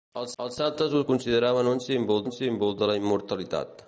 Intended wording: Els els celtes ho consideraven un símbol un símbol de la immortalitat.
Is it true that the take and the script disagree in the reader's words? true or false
false